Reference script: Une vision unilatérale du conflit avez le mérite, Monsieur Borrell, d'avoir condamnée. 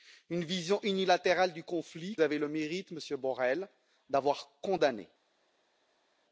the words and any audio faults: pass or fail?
pass